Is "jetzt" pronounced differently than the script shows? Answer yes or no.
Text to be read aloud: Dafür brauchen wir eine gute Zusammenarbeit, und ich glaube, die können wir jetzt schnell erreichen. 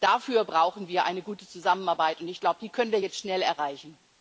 no